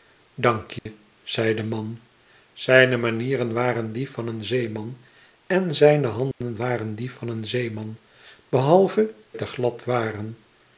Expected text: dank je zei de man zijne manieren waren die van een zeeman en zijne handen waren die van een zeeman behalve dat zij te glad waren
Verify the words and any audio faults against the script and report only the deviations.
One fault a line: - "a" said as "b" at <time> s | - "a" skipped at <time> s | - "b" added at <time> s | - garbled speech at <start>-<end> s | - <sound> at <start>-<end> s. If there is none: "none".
- dropout at 0.8-0.9 s
- dropout at 6.3-6.4 s
- "dat zij" skipped at 9.1 s